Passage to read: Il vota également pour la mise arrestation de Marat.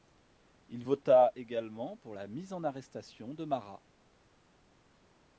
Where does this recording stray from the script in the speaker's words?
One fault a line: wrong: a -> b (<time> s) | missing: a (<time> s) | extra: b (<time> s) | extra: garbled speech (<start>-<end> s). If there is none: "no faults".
extra: en (2.5 s)